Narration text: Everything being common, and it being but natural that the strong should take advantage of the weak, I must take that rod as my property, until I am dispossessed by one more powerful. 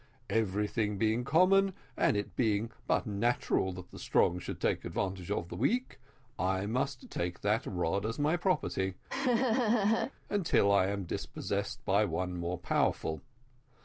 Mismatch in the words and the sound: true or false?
true